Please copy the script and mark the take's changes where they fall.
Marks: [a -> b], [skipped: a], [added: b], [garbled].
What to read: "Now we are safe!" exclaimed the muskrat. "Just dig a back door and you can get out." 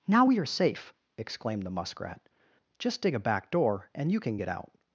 "Now we are safe!" exclaimed the muskrat. "Just dig a back door and you can get out."